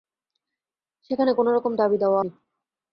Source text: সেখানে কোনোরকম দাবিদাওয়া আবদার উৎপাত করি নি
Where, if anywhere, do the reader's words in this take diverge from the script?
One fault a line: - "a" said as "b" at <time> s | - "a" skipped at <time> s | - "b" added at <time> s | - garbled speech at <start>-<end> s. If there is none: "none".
- "আবদার উৎপাত করি" skipped at 2.2 s